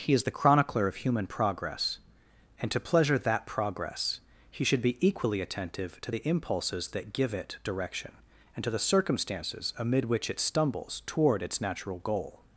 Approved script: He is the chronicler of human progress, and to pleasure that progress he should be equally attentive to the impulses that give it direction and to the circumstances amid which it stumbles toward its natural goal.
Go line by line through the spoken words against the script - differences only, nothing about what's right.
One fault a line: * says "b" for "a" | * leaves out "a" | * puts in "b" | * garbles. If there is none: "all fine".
all fine